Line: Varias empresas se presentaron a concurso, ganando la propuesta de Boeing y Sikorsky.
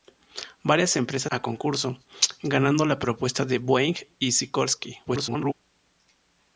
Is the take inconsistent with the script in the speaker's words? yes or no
yes